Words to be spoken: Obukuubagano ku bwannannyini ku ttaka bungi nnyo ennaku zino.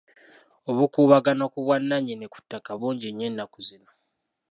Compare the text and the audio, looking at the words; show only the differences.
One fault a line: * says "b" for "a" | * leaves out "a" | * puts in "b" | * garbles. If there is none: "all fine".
all fine